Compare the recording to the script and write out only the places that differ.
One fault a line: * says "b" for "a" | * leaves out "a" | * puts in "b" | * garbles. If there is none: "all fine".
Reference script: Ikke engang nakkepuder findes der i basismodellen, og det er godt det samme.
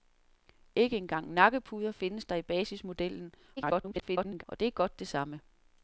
* garbles